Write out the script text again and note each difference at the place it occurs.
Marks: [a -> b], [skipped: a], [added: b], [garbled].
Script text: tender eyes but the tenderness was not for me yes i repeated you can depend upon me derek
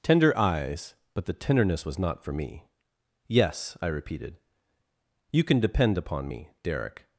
tender eyes but the tenderness was not for me yes i repeated you can depend upon me derek